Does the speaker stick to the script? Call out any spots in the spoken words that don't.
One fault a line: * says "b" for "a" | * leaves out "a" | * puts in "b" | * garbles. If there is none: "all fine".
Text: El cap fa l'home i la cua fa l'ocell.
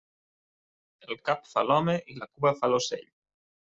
all fine